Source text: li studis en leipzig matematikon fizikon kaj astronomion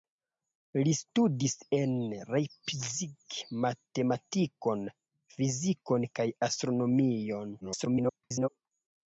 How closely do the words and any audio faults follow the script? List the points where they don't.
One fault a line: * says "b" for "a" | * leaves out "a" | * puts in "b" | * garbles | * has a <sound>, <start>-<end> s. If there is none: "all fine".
* garbles